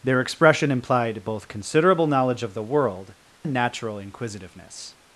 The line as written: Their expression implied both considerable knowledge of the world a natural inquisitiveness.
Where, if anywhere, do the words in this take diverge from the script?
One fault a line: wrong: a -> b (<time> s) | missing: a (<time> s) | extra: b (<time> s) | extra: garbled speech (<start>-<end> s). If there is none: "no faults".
no faults